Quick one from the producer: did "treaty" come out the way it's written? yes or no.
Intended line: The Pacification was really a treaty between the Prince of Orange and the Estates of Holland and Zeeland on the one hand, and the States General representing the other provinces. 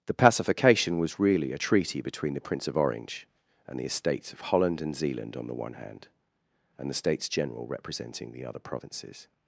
yes